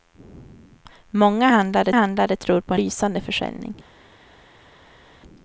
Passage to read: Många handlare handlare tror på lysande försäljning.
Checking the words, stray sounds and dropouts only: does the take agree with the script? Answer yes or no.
yes